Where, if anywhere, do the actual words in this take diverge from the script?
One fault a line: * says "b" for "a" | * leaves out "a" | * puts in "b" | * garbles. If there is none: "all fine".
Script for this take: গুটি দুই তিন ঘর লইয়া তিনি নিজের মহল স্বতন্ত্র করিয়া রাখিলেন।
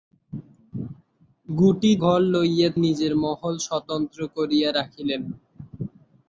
* leaves out "দুই তিন"
* leaves out "তিনি"